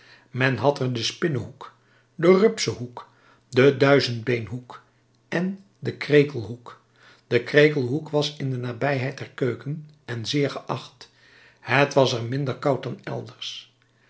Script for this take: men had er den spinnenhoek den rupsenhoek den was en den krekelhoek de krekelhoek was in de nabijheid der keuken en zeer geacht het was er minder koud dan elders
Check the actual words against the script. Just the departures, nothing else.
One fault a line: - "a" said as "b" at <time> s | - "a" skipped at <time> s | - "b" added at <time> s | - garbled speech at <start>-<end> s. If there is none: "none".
- "was" said as "duizendbeenhoek" at 3.8 s